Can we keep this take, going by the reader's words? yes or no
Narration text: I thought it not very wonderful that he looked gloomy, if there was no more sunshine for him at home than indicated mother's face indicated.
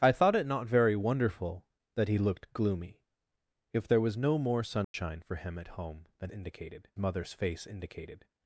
yes